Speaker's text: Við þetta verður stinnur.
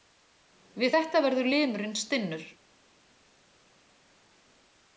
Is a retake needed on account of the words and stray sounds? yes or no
yes